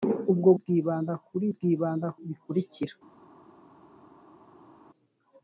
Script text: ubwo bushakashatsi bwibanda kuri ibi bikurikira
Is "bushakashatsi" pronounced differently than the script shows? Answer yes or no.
yes